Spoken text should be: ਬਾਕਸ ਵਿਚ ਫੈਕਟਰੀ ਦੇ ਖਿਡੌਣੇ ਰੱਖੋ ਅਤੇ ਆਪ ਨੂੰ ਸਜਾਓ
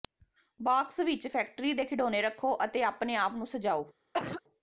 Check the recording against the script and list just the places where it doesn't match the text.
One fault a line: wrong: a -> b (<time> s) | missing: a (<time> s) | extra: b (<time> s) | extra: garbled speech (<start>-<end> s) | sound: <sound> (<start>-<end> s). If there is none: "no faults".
extra: ਆਪਣੇ (2.8 s)
sound: cough (4.1-4.4 s)